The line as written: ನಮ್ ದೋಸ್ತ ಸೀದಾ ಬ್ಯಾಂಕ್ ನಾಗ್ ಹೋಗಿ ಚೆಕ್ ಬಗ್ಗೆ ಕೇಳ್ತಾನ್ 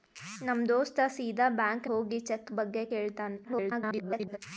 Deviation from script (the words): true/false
true